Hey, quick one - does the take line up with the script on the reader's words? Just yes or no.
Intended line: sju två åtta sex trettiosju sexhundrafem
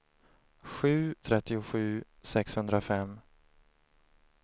no